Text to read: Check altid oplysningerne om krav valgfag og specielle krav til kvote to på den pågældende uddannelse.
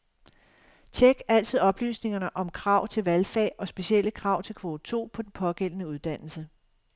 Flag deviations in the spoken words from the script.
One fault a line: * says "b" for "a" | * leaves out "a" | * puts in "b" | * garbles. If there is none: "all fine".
* puts in "til"